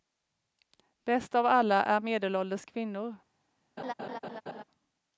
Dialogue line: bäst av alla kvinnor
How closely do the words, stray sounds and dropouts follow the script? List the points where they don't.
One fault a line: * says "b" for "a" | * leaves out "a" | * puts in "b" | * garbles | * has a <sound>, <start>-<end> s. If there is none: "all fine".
* puts in "är medelålders"
* has a laugh, 3.8-4.6 s